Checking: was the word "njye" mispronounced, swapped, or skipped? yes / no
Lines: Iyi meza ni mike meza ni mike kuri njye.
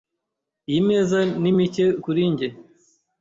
no